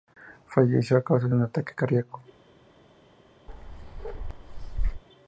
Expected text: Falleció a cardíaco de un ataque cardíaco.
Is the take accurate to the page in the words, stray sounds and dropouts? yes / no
no